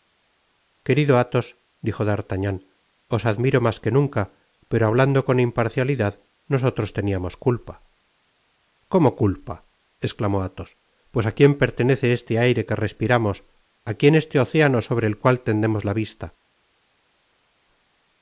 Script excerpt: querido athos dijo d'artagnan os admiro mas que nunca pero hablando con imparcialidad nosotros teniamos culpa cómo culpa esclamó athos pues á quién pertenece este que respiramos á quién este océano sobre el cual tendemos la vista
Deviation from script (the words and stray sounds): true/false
true